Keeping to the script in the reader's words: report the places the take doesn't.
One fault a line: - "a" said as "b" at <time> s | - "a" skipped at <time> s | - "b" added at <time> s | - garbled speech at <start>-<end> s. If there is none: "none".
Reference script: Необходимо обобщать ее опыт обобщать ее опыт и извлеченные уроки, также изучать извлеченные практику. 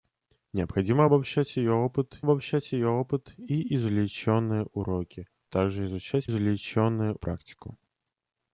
none